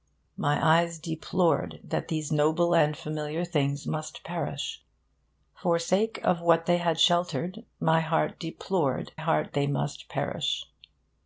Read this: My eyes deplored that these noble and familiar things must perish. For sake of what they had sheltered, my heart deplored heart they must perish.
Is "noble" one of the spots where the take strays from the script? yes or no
no